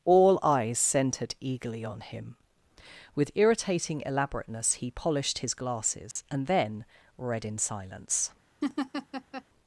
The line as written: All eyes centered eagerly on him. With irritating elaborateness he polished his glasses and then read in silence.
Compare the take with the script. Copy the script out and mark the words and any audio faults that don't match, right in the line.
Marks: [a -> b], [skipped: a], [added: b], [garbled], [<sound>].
All eyes centered eagerly on him. With irritating elaborateness he polished his glasses [dropout] and then read in silence. [laugh]